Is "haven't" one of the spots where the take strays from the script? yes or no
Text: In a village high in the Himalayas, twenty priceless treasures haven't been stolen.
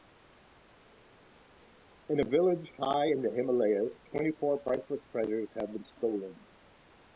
yes